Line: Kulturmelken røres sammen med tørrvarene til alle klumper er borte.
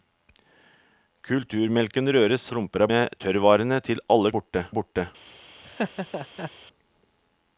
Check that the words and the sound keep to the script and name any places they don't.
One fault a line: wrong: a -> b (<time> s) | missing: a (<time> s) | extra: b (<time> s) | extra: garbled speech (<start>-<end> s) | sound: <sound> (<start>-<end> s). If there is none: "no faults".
wrong: sammen -> klumper (2.5 s)
wrong: klumper -> borte (4.4 s)
sound: laugh (5.6-6.5 s)